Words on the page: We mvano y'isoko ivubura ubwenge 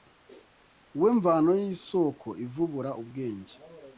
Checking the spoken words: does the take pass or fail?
pass